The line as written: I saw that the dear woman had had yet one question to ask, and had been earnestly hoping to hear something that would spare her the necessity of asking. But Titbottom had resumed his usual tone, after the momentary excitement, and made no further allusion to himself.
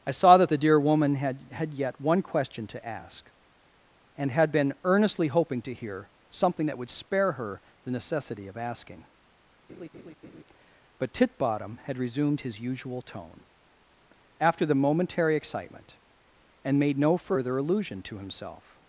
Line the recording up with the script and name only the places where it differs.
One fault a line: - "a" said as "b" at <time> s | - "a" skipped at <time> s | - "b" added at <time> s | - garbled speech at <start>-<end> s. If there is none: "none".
none